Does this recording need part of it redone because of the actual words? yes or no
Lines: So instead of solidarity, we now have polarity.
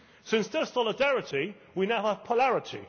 no